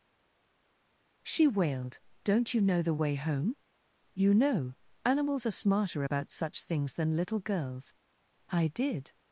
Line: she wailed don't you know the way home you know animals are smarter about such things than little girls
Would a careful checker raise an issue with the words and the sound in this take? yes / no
yes